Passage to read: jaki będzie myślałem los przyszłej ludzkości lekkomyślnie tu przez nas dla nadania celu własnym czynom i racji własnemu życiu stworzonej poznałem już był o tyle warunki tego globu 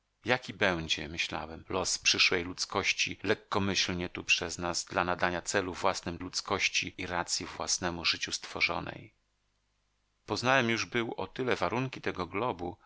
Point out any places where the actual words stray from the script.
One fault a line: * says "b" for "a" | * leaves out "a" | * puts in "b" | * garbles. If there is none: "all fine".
* says "ludzkości" for "czynom"